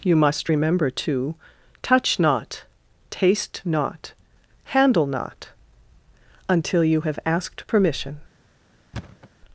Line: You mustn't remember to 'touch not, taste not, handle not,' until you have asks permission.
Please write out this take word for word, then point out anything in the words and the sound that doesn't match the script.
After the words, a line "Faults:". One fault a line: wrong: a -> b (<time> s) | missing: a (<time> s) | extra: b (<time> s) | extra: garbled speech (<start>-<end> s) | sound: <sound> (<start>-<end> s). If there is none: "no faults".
You must remember to 'touch not, taste not, handle not,' until you have asked permission.
Faults:
wrong: mustn't -> must (0.1 s)
wrong: asks -> asked (7.2 s)
sound: thud (8.9-9.3 s)